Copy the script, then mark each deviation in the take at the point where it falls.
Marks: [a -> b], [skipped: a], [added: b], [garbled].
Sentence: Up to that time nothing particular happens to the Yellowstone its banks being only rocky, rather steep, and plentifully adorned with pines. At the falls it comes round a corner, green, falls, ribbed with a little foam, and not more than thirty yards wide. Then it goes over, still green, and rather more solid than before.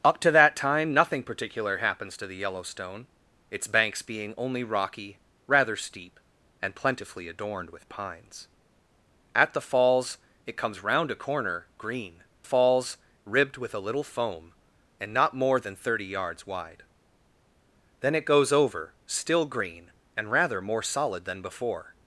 Up to that time nothing particular happens to the Yellowstone its banks being only rocky, rather steep, and plentifully adorned with pines. At the falls it comes round a corner, green, falls, ribbed with a little foam, and not more than thirty yards wide. Then it goes over, still green, and rather more solid than before.